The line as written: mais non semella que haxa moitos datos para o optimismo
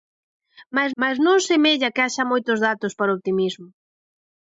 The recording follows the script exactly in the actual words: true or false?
false